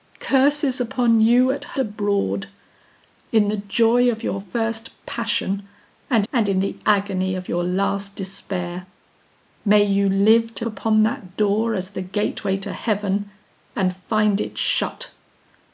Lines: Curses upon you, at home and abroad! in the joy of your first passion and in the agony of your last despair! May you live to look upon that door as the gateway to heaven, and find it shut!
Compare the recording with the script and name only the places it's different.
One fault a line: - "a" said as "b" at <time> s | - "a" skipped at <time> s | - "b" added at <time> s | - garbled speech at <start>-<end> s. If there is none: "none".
- "home and" skipped at 1.6 s
- "and" added at 6.3 s
- "look" skipped at 10.7 s